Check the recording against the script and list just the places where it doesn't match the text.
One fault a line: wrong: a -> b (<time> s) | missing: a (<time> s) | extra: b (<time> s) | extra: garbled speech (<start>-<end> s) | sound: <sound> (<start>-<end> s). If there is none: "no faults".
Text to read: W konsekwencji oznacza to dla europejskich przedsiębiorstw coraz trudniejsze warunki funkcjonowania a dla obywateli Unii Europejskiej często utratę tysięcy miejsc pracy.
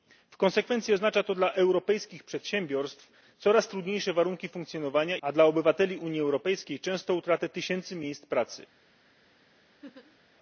sound: laugh (9.8-10.2 s)